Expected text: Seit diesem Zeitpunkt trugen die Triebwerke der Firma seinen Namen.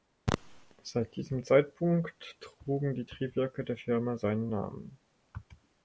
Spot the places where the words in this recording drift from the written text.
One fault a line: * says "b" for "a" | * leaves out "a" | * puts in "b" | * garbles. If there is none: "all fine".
all fine